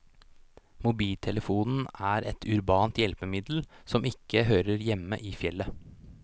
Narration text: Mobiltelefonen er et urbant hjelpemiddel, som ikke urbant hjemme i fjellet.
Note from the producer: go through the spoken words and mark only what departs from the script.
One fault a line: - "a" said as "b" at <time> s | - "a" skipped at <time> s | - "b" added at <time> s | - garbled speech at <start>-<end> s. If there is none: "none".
- "urbant" said as "hører" at 4.5 s